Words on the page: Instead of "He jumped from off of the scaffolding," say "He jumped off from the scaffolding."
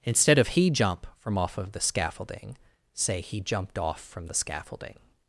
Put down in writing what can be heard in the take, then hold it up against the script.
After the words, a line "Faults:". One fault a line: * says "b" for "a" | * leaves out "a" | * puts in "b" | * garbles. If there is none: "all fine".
Instead of "He jump from off of the scaffolding," say "He jumped off from the scaffolding."
Faults:
* says "jump" for "jumped"